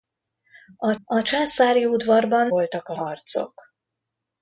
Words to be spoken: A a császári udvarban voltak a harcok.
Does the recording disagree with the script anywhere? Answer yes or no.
no